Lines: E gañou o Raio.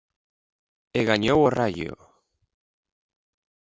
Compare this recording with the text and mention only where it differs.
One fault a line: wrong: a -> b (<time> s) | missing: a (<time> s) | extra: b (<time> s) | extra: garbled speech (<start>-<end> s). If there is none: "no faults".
no faults